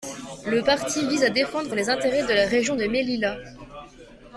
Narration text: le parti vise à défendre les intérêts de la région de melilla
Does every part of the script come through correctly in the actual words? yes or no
yes